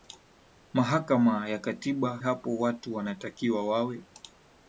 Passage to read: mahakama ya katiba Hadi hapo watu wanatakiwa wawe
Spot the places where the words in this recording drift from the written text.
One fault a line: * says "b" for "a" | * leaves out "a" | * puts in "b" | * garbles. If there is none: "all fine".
* leaves out "Hadi"